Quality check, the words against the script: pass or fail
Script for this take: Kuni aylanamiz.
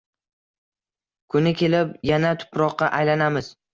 fail